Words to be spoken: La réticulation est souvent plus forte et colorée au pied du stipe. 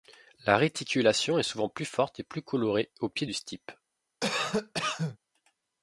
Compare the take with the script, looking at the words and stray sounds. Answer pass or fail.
fail